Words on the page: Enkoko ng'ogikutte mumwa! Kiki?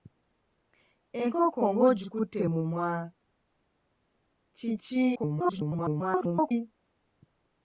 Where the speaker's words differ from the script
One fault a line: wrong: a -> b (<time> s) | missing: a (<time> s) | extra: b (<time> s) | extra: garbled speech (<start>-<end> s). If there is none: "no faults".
extra: garbled speech (5.1-6.5 s)